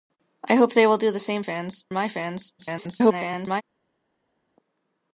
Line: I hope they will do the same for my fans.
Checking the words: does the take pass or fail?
fail